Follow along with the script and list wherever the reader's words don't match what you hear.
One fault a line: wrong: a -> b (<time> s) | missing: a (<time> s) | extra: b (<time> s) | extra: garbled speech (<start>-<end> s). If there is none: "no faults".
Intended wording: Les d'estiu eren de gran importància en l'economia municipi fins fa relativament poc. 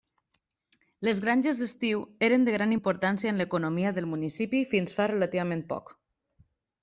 extra: granges (1.2 s)
extra: del (4.0 s)